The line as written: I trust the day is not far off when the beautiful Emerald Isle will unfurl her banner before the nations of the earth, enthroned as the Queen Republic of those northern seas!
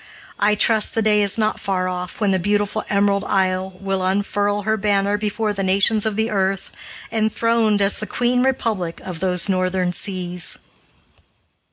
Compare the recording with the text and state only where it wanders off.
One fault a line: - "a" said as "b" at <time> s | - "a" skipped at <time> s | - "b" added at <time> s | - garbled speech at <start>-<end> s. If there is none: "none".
none